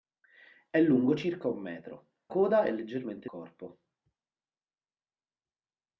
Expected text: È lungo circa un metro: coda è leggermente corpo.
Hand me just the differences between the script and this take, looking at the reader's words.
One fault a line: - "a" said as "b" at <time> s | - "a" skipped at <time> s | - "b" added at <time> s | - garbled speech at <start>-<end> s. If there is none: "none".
none